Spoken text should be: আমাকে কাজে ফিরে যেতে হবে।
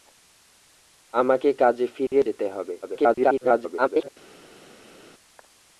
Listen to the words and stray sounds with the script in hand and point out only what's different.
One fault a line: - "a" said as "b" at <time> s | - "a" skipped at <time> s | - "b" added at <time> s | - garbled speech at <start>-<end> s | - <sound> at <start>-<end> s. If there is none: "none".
- garbled speech at 2.8-4.1 s